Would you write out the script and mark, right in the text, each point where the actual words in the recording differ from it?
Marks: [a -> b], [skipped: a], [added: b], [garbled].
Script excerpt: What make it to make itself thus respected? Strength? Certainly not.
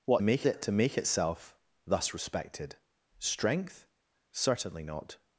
What make it to make itself thus respected? Strength? Certainly not.